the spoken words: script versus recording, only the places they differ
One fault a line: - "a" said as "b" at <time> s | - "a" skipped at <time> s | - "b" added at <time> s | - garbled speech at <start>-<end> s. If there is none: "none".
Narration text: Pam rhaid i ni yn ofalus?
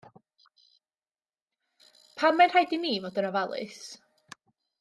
- "mae'n" added at 2.4 s
- "fod" added at 3.1 s